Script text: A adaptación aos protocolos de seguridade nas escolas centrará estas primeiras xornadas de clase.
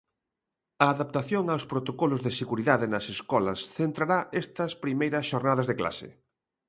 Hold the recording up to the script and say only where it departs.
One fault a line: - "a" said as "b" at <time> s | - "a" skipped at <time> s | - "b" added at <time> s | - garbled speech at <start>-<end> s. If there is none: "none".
none